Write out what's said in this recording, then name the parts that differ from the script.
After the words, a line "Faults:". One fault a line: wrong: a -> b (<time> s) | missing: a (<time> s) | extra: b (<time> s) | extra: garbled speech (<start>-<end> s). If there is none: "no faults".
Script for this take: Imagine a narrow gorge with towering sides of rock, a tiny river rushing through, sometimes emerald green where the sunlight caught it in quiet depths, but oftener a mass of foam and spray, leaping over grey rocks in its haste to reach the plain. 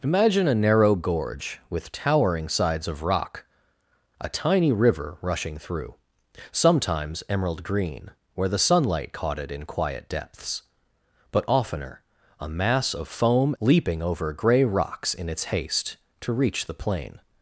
Imagine a narrow gorge with towering sides of rock, a tiny river rushing through, sometimes emerald green where the sunlight caught it in quiet depths, but oftener a mass of foam leaping over grey rocks in its haste to reach the plain.
Faults:
missing: and spray (13.6 s)